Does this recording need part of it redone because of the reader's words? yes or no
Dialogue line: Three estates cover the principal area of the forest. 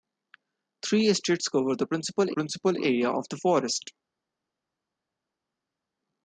yes